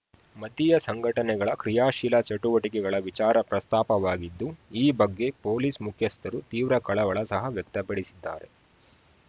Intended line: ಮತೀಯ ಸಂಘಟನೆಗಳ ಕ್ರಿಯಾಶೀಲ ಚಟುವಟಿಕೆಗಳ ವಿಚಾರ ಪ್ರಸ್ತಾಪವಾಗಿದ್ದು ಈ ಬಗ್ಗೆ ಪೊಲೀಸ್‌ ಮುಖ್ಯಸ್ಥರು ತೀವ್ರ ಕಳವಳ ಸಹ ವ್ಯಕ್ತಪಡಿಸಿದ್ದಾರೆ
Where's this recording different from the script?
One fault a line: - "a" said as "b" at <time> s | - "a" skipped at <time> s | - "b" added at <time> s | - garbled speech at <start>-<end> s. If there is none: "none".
none